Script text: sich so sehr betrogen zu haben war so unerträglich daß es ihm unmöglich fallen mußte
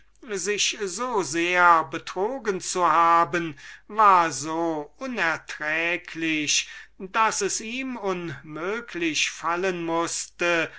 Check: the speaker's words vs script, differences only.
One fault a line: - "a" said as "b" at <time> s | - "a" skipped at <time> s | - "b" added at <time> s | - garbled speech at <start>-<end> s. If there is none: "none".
none